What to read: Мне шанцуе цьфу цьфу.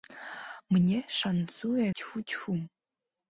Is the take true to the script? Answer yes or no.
yes